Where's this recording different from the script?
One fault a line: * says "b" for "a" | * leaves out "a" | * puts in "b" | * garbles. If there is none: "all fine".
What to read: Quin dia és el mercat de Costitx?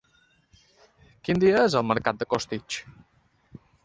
all fine